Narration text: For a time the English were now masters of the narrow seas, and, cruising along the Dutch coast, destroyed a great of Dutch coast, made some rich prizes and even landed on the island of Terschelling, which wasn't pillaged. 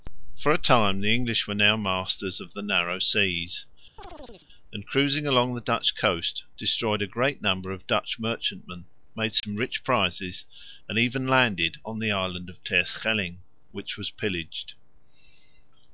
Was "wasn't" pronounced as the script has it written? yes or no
no